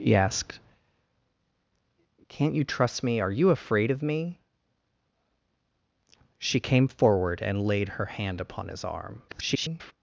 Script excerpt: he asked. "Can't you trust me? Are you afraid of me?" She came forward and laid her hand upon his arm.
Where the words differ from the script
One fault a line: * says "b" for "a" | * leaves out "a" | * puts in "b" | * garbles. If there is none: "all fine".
* garbles